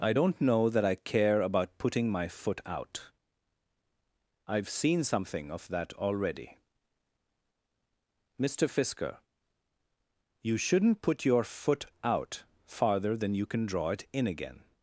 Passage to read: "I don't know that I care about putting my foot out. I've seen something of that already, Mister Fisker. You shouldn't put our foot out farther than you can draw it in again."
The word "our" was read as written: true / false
false